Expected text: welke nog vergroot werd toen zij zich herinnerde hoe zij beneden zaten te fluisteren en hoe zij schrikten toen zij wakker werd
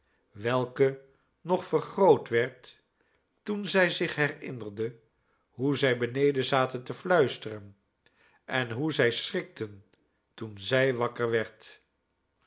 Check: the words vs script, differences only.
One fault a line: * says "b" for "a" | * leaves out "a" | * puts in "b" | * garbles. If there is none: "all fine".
all fine